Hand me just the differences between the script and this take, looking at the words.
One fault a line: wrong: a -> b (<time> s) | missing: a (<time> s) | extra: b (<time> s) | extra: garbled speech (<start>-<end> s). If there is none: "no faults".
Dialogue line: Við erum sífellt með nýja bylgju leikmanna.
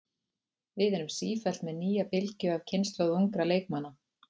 extra: af kynslóð ungra (2.6 s)